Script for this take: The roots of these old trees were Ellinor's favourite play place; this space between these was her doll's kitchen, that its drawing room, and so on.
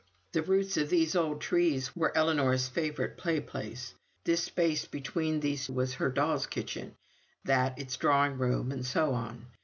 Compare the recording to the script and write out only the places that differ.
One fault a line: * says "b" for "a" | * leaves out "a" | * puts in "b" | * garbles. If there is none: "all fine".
all fine